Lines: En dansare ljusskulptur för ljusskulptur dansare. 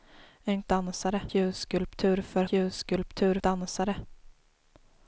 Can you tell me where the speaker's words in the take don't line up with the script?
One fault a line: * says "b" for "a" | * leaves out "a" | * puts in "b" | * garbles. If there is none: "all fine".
all fine